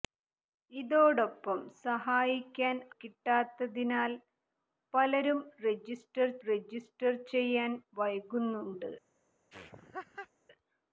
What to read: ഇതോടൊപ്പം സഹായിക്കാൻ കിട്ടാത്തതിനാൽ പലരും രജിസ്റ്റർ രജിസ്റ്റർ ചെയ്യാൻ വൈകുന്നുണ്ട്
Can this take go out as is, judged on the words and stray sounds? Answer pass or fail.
fail